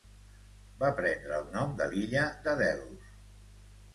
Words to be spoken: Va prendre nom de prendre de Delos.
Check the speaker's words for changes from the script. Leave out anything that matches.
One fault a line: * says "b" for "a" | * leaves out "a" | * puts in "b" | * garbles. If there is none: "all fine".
* puts in "el"
* says "l'illa" for "prendre"